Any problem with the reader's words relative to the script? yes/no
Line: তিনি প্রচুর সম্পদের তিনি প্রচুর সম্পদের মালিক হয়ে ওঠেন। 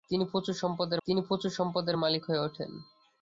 no